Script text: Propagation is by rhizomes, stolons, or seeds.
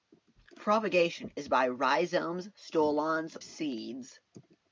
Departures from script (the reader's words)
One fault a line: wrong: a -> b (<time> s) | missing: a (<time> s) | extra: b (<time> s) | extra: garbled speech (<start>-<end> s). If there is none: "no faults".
missing: or (3.4 s)